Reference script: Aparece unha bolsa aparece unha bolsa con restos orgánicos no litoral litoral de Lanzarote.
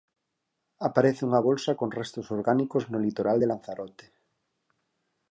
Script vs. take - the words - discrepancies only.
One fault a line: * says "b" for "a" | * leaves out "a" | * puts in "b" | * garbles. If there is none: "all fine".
* leaves out "aparece unha bolsa"
* leaves out "litoral"